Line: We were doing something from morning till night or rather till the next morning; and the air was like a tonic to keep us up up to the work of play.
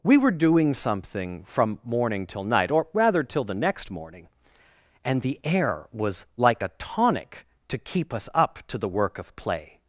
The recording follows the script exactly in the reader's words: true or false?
false